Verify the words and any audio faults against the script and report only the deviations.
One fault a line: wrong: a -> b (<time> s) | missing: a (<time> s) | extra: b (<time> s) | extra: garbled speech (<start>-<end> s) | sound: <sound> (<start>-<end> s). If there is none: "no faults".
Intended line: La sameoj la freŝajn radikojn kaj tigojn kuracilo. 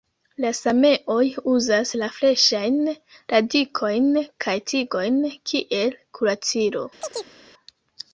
extra: uzas (1.5 s)
extra: kiel (5.5 s)
sound: chirp (7.0-7.4 s)